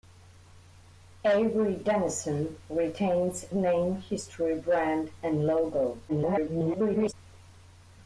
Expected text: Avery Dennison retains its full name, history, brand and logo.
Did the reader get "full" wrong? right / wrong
wrong